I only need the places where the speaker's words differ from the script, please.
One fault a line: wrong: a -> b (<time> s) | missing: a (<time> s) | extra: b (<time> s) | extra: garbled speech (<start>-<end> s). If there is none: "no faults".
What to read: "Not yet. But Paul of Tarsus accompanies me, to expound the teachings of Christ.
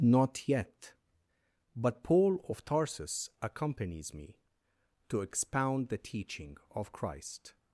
wrong: teachings -> teaching (6.0 s)